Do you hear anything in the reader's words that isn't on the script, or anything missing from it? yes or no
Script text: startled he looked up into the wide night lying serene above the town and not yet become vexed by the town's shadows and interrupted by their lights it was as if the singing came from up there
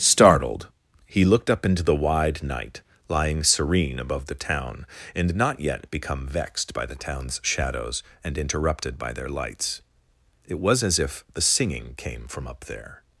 no